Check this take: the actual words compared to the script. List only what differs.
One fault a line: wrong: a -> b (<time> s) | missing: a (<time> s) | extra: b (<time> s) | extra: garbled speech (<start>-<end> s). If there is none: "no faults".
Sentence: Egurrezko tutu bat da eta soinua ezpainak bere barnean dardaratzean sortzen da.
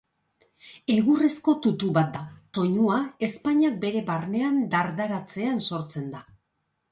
missing: eta (2.2 s)